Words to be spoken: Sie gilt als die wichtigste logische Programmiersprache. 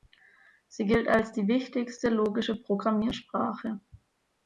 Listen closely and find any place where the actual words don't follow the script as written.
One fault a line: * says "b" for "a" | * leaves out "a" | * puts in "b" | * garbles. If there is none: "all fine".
all fine